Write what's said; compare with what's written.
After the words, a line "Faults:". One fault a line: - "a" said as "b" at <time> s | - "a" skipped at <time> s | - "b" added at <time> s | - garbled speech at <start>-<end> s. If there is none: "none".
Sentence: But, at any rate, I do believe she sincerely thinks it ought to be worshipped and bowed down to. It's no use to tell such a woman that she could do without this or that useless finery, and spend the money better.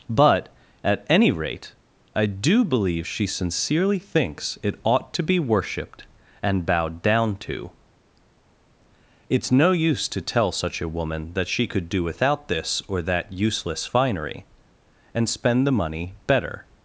But, at any rate, I do believe she sincerely thinks it ought to be worshipped and bowed down to. It's no use to tell such a woman that she could do without this or that useless finery, and spend the money better.
Faults:
none